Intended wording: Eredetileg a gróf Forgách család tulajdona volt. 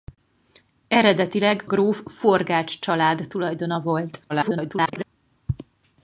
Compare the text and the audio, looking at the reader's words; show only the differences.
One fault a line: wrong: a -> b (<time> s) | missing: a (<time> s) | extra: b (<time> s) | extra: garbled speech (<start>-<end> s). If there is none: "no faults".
missing: a (1.6 s)
extra: garbled speech (4.3-5.0 s)